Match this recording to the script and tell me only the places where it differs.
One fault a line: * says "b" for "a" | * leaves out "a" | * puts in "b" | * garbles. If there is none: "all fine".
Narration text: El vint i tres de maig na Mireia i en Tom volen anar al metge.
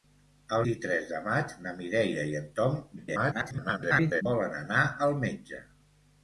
* leaves out "vint"
* garbles